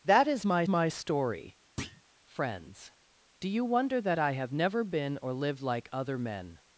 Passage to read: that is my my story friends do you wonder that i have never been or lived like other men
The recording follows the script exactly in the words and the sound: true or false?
false